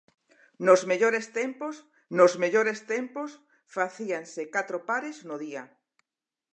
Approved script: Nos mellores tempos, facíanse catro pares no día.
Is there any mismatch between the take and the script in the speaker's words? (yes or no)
yes